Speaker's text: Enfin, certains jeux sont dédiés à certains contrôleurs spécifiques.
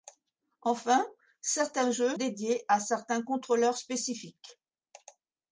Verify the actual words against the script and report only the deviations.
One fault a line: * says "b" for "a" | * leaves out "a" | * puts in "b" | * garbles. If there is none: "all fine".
* leaves out "sont"